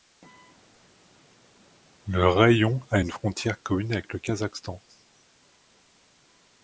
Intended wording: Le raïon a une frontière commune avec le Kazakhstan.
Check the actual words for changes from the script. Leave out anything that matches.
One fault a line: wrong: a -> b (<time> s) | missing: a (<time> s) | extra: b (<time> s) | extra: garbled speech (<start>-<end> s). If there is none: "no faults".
no faults